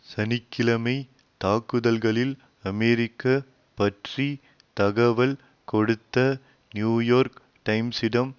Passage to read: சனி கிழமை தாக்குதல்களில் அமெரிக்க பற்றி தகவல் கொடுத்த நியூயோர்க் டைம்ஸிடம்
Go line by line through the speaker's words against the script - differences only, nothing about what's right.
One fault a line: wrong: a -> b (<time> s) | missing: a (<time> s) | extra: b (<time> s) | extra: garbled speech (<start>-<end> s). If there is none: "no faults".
no faults